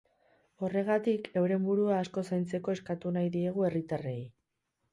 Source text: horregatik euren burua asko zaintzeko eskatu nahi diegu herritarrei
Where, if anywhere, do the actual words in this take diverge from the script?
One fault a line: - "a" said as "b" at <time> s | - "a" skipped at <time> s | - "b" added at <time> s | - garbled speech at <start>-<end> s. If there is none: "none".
none